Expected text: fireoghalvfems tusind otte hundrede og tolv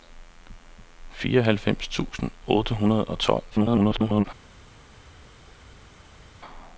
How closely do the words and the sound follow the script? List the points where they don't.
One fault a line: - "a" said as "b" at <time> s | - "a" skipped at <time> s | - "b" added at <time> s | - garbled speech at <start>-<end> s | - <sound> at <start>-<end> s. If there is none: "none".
- garbled speech at 3.5-4.3 s